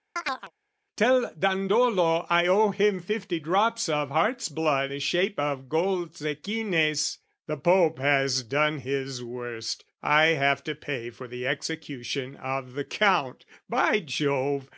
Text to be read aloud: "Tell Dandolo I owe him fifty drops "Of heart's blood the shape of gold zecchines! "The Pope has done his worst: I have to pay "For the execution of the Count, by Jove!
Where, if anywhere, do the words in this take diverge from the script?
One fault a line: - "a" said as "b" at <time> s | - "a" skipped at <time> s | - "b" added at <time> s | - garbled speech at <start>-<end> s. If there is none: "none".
none